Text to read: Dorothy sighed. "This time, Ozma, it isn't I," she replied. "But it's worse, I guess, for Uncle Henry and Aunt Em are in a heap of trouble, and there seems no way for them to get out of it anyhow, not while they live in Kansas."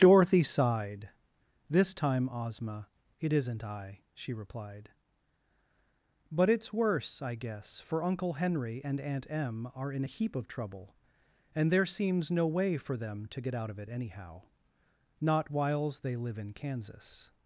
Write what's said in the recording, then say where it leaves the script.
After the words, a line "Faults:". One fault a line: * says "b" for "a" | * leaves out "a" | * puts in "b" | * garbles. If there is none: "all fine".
Dorothy sighed. "This time, Ozma, it isn't I," she replied. "But it's worse, I guess, for Uncle Henry and Aunt Em are in a heap of trouble, and there seems no way for them to get out of it anyhow, not whiles they live in Kansas."
Faults:
* says "whiles" for "while"